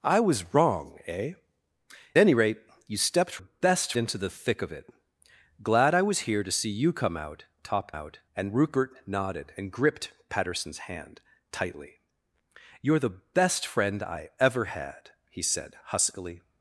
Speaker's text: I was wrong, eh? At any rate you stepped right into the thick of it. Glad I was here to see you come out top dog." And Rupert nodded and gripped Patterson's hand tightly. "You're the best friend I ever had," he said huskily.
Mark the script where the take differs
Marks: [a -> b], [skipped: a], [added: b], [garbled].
I was wrong, eh? [skipped: At] any rate you stepped [right -> best] into the thick of it. Glad I was here to see you come out top [dog." -> out] And Rupert nodded and gripped Patterson's hand tightly. "You're the best friend I ever had," he said huskily.